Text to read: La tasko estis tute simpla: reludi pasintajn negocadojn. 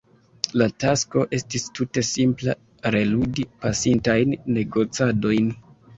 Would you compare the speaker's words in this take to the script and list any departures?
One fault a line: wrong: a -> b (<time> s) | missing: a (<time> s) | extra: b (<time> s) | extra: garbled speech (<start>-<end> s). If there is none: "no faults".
no faults